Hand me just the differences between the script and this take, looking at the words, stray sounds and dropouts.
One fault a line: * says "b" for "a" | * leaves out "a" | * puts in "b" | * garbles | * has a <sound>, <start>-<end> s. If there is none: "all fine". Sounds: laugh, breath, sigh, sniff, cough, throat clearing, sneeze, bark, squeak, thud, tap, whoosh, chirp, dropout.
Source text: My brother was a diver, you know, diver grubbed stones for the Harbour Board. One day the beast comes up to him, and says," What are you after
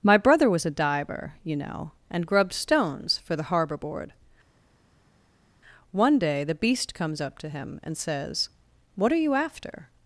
* says "and" for "diver"